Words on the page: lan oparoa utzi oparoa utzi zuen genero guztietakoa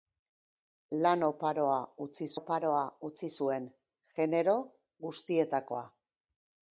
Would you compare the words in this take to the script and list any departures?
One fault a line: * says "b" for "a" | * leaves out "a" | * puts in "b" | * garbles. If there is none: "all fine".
all fine